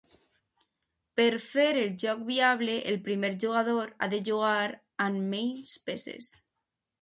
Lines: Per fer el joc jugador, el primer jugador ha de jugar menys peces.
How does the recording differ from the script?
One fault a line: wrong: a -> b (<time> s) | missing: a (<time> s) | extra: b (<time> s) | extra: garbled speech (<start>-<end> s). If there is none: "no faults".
wrong: jugador -> viable (2.3 s)
extra: amb (5.1 s)